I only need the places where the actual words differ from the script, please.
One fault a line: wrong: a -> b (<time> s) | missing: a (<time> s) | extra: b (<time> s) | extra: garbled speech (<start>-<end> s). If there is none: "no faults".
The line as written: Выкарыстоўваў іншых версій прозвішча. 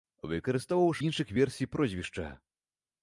no faults